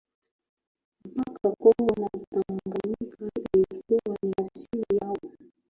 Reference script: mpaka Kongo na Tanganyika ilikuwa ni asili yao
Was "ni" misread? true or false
false